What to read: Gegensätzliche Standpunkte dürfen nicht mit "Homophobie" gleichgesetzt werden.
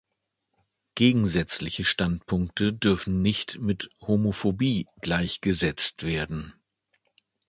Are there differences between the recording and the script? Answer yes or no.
no